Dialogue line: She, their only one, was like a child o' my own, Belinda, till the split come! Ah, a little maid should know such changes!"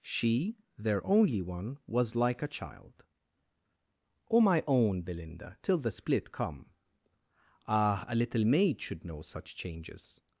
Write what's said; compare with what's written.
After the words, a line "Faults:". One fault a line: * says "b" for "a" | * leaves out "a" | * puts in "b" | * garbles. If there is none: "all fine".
She, their only one, was like a child o' my own, Belinda, till the split come! Ah, a little maid should know such changes!"
Faults:
all fine